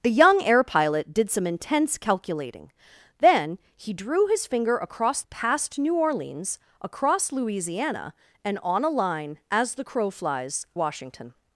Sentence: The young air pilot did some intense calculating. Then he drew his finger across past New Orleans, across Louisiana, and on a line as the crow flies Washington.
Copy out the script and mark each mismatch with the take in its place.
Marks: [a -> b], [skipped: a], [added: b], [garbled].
The young air pilot did some intense calculating. Then he drew his finger across past New Orleans, across Louisiana, and on a line as the crow flies Washington.